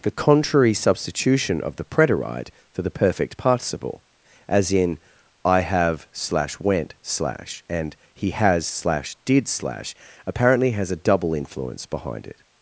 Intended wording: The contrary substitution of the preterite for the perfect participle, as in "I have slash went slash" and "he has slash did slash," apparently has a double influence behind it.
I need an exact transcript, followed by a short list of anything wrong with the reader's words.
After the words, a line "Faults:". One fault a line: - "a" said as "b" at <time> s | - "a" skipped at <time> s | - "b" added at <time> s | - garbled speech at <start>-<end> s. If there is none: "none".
The contrary substitution of the preterite for the perfect participle, as in "I have slash went slash" and "he has slash did slash," apparently has a double influence behind it.
Faults:
none